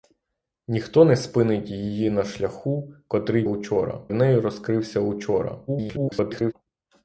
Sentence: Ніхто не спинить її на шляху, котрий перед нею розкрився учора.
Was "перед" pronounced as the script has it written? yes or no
no